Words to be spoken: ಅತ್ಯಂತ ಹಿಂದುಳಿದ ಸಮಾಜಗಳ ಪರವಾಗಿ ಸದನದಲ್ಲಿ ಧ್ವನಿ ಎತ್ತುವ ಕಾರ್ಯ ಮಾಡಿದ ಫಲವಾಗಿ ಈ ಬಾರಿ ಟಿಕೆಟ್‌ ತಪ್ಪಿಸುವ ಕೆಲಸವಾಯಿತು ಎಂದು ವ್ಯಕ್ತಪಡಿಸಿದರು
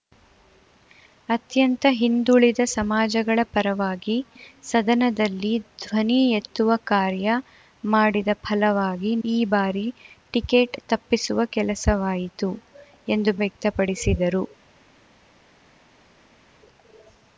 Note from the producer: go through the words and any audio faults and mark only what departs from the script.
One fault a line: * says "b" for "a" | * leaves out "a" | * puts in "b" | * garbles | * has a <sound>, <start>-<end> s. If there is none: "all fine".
all fine